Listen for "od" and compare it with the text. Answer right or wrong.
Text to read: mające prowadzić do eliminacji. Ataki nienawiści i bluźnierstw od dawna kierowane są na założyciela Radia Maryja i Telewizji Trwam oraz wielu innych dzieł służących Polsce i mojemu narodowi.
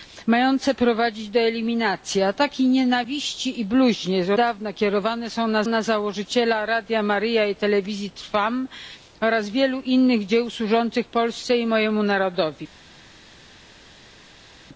wrong